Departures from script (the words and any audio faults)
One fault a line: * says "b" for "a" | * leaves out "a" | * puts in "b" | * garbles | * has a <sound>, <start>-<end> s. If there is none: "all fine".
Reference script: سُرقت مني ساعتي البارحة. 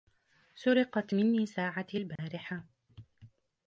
* has a dropout, 2.2-2.2 s